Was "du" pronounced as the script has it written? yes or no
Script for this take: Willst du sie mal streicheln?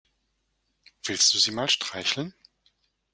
yes